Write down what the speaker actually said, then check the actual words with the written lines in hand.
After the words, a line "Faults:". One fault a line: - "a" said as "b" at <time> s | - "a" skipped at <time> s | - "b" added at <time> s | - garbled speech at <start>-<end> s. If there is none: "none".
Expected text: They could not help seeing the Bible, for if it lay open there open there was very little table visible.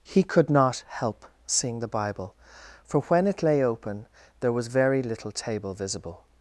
He could not help seeing the Bible, for when it lay open there was very little table visible.
Faults:
- "They" said as "He" at 0.0 s
- "if" said as "when" at 3.0 s
- "open there" skipped at 4.5 s